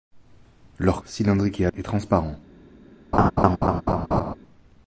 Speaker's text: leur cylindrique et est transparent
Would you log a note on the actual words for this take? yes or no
no